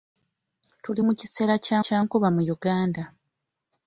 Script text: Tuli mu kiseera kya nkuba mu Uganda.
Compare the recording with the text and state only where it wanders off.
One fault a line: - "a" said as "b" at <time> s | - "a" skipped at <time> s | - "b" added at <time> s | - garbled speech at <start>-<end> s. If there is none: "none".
- "kya" added at 1.8 s